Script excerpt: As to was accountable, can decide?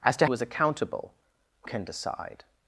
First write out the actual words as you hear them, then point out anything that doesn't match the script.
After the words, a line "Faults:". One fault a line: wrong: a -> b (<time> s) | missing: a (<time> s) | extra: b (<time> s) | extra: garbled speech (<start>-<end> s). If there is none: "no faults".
As to was accountable, can decide?
Faults:
no faults